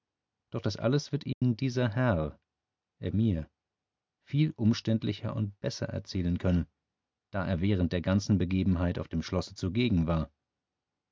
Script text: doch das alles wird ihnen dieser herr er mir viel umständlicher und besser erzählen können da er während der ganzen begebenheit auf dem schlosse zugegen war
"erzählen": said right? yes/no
yes